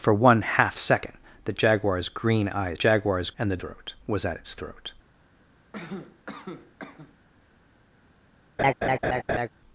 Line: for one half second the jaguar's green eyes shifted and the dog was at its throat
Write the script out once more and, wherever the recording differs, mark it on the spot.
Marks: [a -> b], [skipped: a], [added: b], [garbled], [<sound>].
for one half second the jaguar's green eyes [shifted -> jaguar's] and the [dog -> throat] was at its throat [cough] [laugh]